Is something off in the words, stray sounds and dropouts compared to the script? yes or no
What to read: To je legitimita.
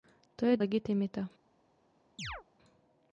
yes